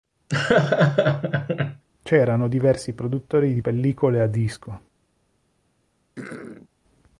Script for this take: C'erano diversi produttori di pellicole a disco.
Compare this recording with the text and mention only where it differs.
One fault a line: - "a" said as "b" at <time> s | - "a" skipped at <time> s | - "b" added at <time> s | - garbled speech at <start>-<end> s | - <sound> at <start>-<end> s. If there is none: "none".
- laugh at 0.3-1.8 s
- throat clearing at 6.2-6.7 s